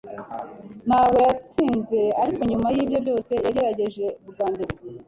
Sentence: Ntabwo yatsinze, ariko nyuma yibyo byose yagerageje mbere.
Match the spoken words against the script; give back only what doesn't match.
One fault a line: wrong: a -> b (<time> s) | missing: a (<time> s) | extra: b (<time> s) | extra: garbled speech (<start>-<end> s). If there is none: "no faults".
extra: bwa (4.3 s)